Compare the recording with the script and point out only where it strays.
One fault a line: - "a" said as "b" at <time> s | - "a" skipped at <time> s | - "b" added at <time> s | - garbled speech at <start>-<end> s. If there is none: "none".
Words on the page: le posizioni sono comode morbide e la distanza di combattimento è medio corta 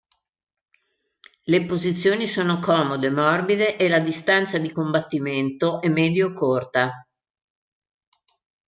none